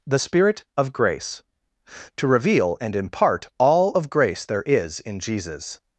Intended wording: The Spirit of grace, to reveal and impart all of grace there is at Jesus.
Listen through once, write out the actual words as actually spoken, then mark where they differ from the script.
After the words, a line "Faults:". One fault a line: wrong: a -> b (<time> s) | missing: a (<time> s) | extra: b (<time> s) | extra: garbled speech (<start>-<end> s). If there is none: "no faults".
The Spirit of grace, to reveal and impart all of grace there is in Jesus.
Faults:
wrong: at -> in (5.0 s)